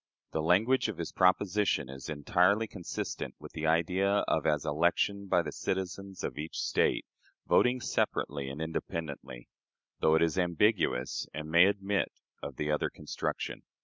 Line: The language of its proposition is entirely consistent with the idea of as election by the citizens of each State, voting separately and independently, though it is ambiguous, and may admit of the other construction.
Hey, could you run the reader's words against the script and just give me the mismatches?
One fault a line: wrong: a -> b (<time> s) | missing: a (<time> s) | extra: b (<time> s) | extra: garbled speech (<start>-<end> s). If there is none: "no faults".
wrong: its -> his (1.0 s)